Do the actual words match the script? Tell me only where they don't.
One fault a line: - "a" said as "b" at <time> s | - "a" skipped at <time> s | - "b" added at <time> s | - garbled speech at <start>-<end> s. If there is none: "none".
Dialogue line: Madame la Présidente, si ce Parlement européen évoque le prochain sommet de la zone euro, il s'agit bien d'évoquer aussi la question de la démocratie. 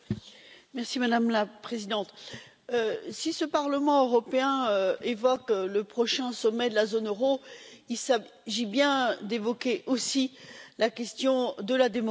none